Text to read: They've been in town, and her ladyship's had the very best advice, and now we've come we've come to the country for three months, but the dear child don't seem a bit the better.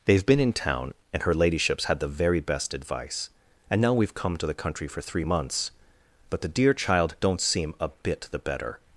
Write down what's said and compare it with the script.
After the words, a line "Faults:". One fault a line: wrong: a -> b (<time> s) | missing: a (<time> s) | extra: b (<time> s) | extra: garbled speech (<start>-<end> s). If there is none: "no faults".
They've been in town, and her ladyship's had the very best advice, and now we've come to the country for three months, but the dear child don't seem a bit the better.
Faults:
missing: we've come (4.4 s)